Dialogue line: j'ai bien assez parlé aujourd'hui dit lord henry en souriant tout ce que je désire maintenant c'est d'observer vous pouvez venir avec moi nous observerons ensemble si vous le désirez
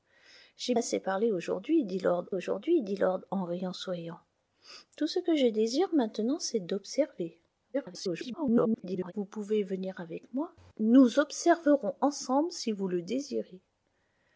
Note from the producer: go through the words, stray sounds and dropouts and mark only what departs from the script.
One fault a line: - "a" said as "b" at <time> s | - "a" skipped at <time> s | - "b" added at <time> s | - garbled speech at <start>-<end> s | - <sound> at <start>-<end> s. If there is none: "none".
- "bien" skipped at 0.7 s
- "aujourd'hui dit lord" added at 2.3 s
- garbled speech at 7.7-9.1 s